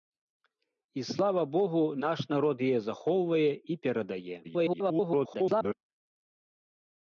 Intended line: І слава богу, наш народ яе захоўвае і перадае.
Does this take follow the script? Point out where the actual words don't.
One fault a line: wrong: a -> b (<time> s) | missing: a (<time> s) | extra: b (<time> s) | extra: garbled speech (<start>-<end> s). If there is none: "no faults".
extra: garbled speech (4.4-5.7 s)